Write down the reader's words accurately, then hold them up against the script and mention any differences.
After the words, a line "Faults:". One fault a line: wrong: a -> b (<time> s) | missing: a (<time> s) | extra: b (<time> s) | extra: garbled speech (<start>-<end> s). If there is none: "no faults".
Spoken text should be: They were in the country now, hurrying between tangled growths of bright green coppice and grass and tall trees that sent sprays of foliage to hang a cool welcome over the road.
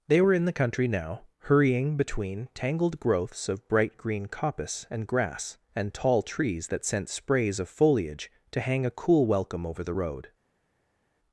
They were in the country now, hurrying between tangled growths of bright green coppice and grass and tall trees that sent sprays of foliage to hang a cool welcome over the road.
Faults:
no faults